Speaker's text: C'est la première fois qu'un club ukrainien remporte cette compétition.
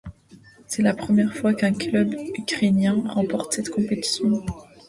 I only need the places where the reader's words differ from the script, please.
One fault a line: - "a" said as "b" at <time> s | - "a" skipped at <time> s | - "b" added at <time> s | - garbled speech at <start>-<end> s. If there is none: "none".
none